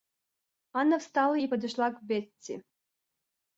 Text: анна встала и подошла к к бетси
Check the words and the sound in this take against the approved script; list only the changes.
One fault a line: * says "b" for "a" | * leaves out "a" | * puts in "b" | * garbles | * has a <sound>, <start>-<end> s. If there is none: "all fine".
* leaves out "к"